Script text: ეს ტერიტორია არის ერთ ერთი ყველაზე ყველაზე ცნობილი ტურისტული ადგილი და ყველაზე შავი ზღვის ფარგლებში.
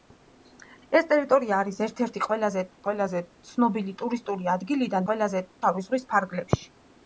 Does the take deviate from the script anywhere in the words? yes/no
no